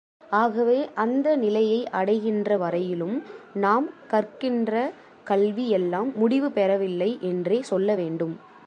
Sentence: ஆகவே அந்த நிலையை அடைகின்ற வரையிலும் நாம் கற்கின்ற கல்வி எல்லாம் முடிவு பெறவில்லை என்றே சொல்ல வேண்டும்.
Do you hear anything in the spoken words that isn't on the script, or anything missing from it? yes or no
no